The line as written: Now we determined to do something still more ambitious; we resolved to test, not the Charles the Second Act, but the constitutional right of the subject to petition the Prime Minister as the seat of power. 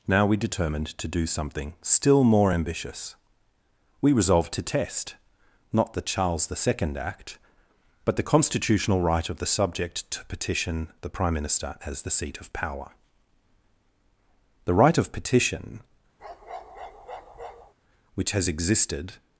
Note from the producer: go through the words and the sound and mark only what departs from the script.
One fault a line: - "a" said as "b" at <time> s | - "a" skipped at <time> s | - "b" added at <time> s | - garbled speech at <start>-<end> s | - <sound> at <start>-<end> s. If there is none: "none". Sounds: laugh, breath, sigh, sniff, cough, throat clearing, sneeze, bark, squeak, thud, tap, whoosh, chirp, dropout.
- "The right of petition which has existed" added at 14.7 s
- bark at 16.2-17.7 s